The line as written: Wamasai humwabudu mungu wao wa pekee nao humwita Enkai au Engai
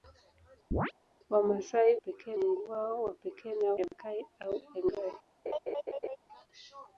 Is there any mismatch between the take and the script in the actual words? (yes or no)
yes